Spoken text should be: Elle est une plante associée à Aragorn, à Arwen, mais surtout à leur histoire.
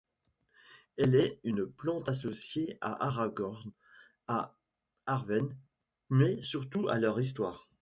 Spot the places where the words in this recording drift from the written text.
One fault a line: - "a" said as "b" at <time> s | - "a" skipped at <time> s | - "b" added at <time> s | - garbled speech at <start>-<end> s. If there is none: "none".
none